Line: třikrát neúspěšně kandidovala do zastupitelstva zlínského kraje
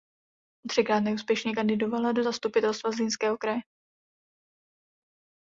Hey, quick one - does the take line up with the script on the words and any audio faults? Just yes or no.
yes